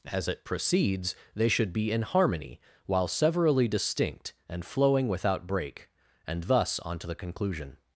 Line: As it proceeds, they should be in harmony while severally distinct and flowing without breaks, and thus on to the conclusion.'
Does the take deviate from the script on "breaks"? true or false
true